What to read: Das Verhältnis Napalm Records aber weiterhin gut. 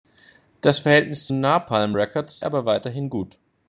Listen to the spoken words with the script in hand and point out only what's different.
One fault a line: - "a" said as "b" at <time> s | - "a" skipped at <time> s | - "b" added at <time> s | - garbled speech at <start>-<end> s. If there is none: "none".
none